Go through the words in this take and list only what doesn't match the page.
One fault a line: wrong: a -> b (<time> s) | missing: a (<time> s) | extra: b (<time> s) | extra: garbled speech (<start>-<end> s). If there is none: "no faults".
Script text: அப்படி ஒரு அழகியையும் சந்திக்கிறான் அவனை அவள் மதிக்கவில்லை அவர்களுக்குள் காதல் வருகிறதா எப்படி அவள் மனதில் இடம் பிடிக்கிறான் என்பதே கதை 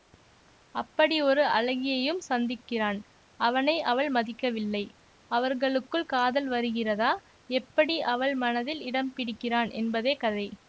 no faults